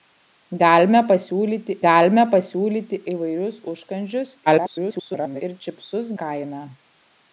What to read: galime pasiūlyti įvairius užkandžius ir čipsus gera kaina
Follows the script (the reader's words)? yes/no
no